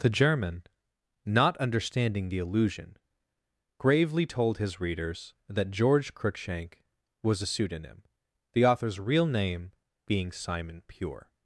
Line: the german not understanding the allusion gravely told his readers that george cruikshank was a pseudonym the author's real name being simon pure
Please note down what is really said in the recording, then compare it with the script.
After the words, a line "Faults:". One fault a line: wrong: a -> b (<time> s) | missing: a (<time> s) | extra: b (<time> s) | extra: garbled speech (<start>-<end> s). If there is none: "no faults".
the german not understanding the allusion gravely told his readers that george cruikshank was a pseudonym the author's real name being simon pure
Faults:
no faults